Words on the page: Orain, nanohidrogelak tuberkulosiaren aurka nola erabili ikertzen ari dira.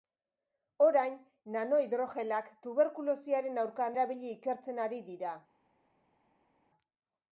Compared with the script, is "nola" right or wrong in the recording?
wrong